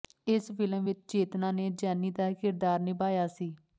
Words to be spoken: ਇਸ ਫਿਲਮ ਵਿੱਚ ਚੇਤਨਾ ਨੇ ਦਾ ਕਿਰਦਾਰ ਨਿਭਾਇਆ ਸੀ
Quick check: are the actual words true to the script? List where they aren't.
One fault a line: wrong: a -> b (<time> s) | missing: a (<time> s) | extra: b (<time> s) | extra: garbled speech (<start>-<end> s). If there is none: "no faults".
extra: ਜੈਨੀ (1.7 s)